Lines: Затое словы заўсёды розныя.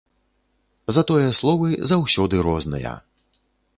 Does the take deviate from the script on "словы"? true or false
false